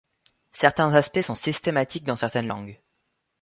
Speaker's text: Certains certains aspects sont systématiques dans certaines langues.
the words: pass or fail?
fail